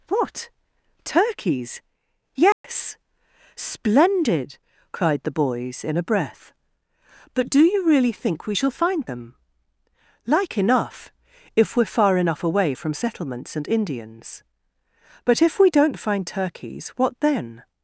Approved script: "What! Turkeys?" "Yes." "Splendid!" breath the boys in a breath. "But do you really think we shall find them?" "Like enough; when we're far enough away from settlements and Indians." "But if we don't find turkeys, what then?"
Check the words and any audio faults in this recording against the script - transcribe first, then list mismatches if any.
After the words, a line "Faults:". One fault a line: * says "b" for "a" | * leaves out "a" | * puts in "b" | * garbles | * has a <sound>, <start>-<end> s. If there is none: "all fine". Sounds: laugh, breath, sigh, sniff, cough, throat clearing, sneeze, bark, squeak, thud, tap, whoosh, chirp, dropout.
"What! Turkeys?" "Yes." "Splendid!" cried the boys in a breath. "But do you really think we shall find them?" "Like enough; if we're far enough away from settlements and Indians." "But if we don't find turkeys, what then?"
Faults:
* has a dropout, 2.5-2.6 s
* says "cried" for "breath"
* says "if" for "when"